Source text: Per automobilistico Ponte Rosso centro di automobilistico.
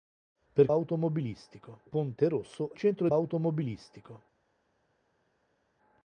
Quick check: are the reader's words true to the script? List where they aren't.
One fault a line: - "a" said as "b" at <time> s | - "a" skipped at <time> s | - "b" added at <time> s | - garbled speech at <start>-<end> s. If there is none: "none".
none